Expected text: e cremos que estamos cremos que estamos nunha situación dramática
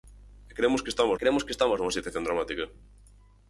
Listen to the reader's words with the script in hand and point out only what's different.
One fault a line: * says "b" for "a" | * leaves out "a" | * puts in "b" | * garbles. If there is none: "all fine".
all fine